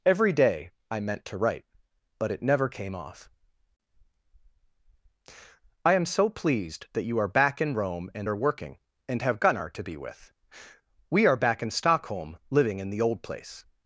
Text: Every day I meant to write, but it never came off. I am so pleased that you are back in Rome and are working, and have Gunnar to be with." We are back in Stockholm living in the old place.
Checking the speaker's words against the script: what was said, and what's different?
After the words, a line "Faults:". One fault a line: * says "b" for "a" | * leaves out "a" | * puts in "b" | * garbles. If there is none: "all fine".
Every day I meant to write, but it never came off. I am so pleased that you are back in Rome and are working, and have Gunnar to be with." We are back in Stockholm living in the old place.
Faults:
all fine